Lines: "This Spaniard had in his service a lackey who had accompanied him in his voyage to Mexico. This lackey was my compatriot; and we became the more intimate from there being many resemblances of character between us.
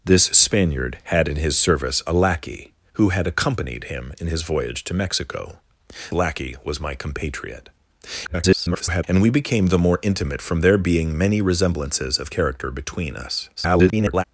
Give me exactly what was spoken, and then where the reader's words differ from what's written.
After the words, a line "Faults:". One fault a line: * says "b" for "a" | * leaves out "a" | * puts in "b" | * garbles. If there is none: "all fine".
"This Spaniard had in his service a lackey who had accompanied him in his voyage to Mexico. Lackey was my compatriot; [garbled] and we became the more intimate from there being many resemblances of character between us. [garbled]
Faults:
* leaves out "This"
* garbles
* garbles